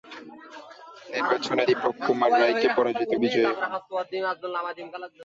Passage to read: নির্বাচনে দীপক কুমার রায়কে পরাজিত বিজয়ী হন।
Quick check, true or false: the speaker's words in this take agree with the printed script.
true